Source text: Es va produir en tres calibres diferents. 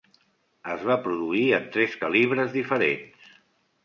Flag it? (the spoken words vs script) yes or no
no